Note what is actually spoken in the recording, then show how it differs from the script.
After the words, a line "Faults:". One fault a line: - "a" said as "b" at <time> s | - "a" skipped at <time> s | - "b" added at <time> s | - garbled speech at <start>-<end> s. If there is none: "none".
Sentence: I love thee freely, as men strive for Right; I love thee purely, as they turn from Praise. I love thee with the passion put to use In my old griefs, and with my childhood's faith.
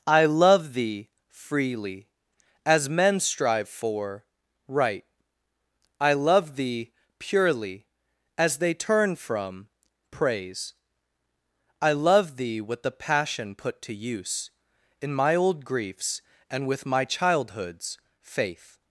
I love thee freely, as men strive for Right; I love thee purely, as they turn from Praise. I love thee with the passion put to use In my old griefs, and with my childhood's faith.
Faults:
none